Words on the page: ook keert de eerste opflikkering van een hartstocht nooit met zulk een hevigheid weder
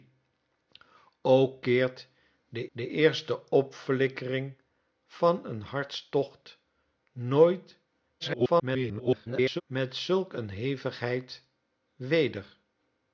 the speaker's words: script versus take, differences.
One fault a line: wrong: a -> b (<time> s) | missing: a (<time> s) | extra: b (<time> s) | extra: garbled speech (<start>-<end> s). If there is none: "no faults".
extra: de (2.7 s)
extra: garbled speech (8.2-9.6 s)